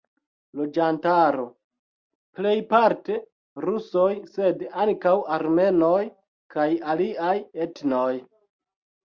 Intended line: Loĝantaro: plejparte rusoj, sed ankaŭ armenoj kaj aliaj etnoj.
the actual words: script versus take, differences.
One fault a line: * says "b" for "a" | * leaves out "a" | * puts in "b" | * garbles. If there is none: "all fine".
all fine